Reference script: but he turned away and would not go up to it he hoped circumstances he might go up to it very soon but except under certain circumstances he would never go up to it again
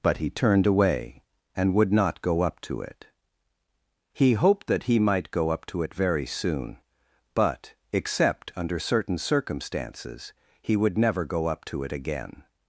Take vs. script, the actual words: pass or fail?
fail